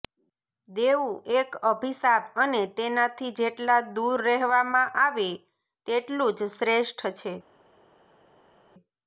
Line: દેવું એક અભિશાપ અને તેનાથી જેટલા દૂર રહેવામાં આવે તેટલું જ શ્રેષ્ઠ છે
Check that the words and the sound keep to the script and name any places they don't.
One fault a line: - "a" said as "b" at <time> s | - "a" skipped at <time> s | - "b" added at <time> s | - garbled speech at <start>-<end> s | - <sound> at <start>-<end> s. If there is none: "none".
none